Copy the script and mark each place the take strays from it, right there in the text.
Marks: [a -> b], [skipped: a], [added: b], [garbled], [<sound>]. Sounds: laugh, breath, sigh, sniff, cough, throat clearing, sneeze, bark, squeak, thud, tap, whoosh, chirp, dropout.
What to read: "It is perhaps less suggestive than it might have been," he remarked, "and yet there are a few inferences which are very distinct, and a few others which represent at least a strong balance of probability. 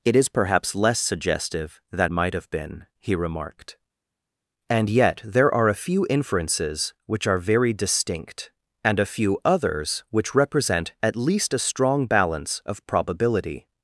"It is perhaps less suggestive than [skipped: it] might have been," he remarked, "and yet there are a few inferences which are very distinct, and a few others which represent at least a strong balance of probability.